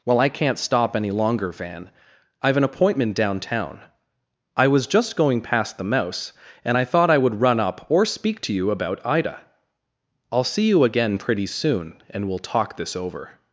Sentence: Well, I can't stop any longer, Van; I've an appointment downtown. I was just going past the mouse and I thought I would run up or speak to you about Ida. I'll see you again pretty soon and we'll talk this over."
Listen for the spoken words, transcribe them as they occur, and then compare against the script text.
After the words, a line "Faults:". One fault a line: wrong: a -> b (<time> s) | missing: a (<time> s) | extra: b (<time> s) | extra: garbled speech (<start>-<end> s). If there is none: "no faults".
Well, I can't stop any longer, Van; I've an appointment downtown. I was just going past the mouse and I thought I would run up or speak to you about Ida. I'll see you again pretty soon and we'll talk this over."
Faults:
no faults